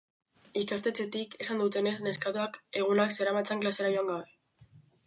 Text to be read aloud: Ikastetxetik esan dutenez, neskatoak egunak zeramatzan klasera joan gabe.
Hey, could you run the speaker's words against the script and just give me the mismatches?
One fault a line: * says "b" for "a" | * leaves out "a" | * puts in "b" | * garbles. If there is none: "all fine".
all fine